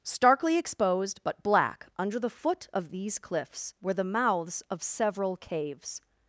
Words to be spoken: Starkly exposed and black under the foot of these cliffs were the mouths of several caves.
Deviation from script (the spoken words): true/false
true